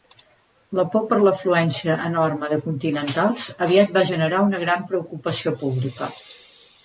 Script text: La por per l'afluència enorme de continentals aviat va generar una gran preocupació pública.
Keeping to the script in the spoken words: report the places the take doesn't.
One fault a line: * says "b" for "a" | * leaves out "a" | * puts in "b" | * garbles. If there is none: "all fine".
all fine